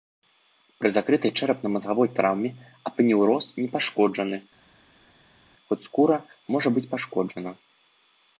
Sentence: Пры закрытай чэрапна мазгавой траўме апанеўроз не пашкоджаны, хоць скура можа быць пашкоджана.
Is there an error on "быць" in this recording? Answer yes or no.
no